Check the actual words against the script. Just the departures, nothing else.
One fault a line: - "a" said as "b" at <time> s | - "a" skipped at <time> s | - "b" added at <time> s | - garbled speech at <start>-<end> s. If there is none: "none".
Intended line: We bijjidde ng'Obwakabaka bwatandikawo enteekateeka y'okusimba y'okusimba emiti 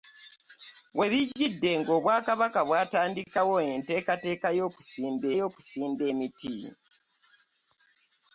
none